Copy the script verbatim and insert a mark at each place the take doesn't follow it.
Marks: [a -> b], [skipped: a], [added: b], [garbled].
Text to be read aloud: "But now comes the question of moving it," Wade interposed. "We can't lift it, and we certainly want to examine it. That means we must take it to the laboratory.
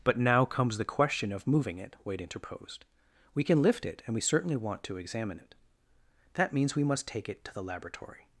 "But now comes the question of moving it," Wade interposed. "We [can't -> can] lift it, and we certainly want to examine it. That means we must take it to the laboratory.